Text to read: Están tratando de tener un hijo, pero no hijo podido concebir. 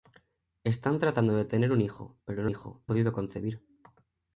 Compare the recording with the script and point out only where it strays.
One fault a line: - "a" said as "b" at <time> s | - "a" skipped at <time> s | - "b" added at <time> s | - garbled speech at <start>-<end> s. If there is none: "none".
none